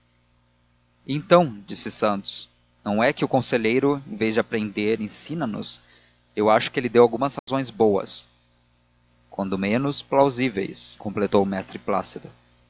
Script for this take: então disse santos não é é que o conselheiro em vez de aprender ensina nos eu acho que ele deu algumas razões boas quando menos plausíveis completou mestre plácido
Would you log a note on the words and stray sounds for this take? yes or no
yes